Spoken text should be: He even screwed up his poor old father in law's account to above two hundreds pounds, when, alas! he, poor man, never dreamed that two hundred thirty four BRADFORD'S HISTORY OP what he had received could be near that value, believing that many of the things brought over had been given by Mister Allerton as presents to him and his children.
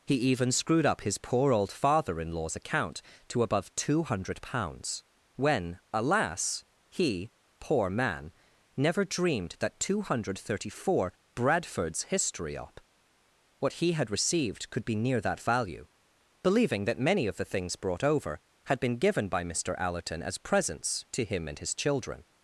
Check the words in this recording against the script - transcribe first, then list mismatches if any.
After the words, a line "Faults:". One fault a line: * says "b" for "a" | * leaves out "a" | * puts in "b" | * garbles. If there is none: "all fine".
He even screwed up his poor old father in law's account to above two hundred pounds, when, alas! he, poor man, never dreamed that two hundred thirty four BRADFORD'S HISTORY OP what he had received could be near that value, believing that many of the things brought over had been given by Mister Allerton as presents to him and his children.
Faults:
* says "hundred" for "hundreds"